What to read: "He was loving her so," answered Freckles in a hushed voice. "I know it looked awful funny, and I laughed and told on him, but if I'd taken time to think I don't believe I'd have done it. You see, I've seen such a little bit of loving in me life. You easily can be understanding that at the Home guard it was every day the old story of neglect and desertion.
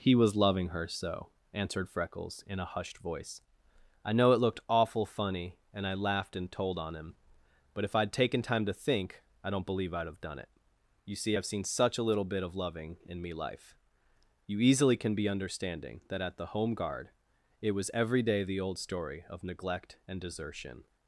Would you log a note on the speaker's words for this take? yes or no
no